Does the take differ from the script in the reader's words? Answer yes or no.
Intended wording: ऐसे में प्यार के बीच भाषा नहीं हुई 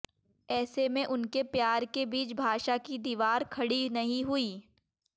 yes